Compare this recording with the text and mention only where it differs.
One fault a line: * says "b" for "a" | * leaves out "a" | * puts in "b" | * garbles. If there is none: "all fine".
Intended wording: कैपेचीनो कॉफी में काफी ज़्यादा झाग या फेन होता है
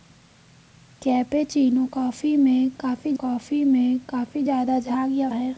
* puts in "कॉफी में काफी"
* leaves out "फेन होता"